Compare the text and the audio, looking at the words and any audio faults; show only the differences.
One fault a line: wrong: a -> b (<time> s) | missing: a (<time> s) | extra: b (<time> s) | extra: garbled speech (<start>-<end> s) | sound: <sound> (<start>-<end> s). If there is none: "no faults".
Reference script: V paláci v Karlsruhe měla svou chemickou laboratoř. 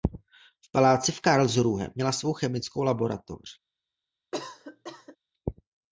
sound: cough (4.3-5.2 s)